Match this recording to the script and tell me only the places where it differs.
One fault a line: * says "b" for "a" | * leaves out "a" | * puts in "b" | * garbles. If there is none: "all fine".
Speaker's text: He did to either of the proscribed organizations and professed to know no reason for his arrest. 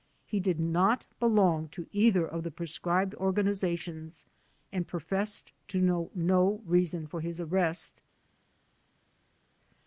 * puts in "not belong"